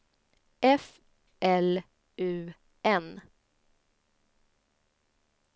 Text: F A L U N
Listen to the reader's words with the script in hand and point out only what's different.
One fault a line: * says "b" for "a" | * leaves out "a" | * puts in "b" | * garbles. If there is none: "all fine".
* leaves out "A"